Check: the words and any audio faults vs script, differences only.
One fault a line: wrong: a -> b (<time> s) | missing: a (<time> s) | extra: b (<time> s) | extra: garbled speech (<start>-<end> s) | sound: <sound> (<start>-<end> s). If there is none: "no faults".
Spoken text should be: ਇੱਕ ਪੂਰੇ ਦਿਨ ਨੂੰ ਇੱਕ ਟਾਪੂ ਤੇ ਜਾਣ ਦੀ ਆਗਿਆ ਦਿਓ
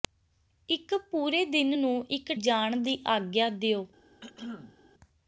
missing: ਟਾਪੂ ਤੇ (2.3 s)
sound: throat clearing (4.2-4.8 s)